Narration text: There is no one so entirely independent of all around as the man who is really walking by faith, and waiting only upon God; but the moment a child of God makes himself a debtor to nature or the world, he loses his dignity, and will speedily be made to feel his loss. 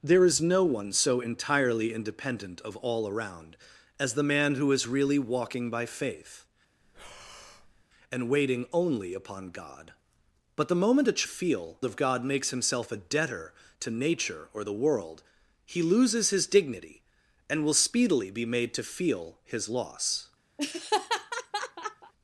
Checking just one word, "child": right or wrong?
wrong